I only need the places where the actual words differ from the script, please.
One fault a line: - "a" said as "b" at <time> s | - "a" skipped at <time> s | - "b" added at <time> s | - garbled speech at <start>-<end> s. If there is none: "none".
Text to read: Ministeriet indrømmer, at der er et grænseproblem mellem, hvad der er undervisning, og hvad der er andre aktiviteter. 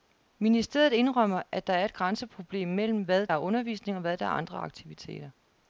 - "der" skipped at 3.3 s